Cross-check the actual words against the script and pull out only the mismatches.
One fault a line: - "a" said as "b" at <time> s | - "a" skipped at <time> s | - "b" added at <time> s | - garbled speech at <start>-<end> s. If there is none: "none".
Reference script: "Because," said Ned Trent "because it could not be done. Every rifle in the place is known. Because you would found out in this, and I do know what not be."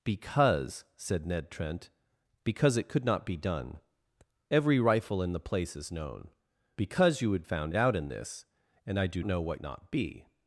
none